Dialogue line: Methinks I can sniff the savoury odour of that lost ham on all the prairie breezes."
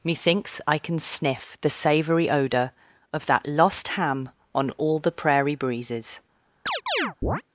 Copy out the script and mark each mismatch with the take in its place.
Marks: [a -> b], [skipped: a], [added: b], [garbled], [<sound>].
Methinks I can sniff the savoury odour of that lost ham on all the prairie breezes." [chirp]